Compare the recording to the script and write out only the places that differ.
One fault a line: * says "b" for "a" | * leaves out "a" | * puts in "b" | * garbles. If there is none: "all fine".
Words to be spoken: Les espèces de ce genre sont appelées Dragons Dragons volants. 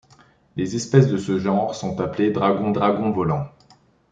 all fine